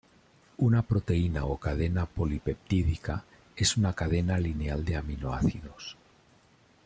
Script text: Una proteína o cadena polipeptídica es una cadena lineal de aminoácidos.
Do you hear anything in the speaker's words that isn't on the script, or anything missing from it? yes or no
no